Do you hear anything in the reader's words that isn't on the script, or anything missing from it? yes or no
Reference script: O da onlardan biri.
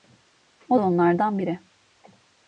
no